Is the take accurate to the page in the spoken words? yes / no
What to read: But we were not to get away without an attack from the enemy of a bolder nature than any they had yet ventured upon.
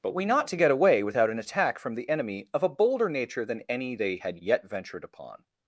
no